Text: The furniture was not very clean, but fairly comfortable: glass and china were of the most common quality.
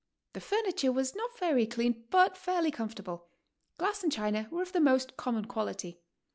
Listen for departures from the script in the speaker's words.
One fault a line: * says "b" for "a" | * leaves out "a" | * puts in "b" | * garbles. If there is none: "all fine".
all fine